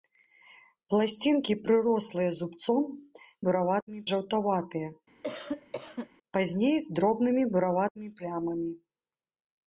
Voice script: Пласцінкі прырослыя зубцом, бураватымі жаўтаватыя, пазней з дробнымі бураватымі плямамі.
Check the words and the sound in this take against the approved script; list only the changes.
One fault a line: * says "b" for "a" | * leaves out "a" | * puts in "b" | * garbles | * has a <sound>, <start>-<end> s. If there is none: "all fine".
* has a cough, 5.2-6.1 s